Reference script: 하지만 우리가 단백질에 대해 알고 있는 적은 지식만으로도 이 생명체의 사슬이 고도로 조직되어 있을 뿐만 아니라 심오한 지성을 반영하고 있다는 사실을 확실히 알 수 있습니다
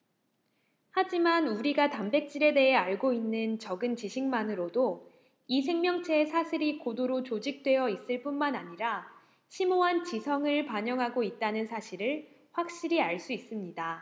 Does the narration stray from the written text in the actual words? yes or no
no